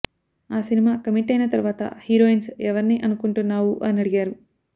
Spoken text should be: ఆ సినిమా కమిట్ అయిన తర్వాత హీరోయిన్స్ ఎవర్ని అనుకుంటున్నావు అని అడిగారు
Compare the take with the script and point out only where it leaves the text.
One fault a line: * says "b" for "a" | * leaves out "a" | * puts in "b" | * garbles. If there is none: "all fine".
all fine